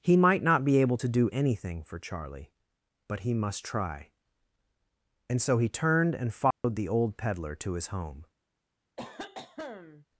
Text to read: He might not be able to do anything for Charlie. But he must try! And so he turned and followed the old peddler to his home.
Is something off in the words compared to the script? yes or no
no